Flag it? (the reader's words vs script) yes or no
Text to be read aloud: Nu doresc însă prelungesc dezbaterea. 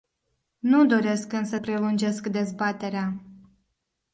no